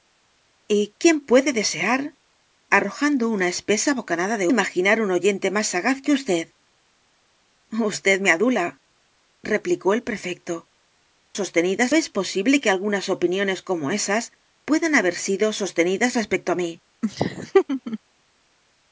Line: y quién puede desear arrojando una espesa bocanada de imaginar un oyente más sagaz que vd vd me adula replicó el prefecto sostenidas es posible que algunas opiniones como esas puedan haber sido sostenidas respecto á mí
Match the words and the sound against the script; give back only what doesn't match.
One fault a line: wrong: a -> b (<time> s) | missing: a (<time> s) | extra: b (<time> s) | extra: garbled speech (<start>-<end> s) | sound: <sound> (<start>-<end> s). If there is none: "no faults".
sound: laugh (17.0-18.0 s)